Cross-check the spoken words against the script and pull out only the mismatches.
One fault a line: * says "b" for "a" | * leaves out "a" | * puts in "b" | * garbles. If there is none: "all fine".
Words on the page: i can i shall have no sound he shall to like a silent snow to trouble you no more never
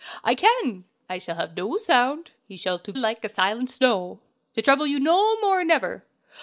all fine